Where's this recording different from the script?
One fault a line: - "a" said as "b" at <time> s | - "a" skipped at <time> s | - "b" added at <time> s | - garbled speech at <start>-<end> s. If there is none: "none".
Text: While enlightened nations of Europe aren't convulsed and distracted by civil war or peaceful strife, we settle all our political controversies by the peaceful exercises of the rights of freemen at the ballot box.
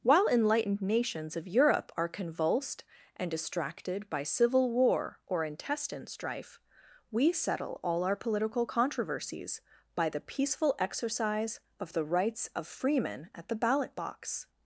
- "aren't" said as "are" at 1.9 s
- "peaceful" said as "intestine" at 5.5 s
- "exercises" said as "exercise" at 10.8 s